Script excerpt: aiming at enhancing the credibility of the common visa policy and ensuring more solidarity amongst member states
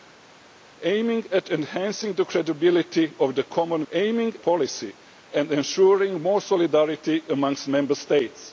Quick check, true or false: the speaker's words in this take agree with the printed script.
false